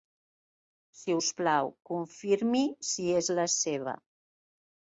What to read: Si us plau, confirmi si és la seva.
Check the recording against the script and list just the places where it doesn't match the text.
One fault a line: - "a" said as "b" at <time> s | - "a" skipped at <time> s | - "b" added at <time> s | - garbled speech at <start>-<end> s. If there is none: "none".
none